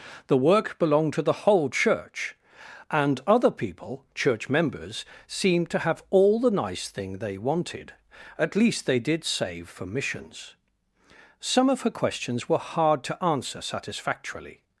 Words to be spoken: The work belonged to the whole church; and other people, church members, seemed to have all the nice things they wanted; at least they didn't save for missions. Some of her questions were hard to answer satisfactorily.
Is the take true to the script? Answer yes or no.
no